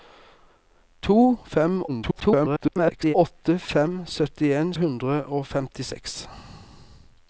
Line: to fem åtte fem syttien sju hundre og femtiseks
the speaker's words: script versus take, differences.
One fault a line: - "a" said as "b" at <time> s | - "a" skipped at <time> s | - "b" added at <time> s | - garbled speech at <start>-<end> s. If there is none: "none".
- garbled speech at 1.9-3.1 s
- "sju" skipped at 4.7 s